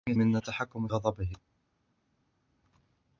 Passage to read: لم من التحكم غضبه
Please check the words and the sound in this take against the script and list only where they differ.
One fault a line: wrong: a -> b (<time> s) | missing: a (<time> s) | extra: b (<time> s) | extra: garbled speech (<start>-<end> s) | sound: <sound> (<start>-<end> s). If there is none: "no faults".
no faults